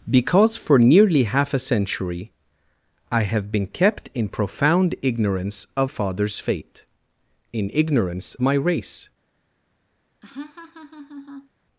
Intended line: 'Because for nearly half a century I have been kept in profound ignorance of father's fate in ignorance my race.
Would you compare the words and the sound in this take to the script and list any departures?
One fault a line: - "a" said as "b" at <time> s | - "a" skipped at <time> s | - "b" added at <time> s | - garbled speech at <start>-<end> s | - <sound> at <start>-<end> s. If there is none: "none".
- laugh at 10.2-11.5 s